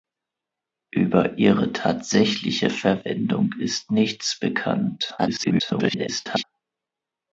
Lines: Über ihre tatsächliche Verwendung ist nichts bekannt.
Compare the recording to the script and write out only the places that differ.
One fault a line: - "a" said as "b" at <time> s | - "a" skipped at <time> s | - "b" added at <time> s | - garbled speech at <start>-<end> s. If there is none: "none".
- garbled speech at 5.2-6.4 s